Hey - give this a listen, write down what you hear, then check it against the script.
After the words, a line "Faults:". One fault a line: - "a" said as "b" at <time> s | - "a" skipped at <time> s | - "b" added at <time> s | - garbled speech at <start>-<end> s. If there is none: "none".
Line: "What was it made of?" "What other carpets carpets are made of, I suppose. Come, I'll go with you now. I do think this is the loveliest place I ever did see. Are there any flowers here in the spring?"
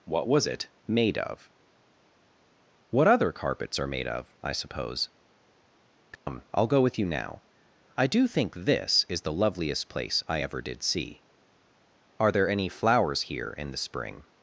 "What was it made of?" "What other carpets are made of, I suppose. Come, I'll go with you now. I do think this is the loveliest place I ever did see. Are there any flowers here in the spring?"
Faults:
- "carpets" skipped at 3.8 s